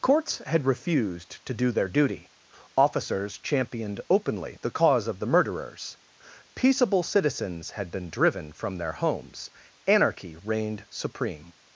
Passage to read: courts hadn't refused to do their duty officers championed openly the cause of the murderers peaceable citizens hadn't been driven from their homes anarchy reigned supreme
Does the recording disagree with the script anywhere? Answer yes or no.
yes